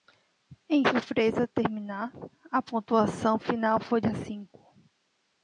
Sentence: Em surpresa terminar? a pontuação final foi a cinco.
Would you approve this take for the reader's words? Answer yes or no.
yes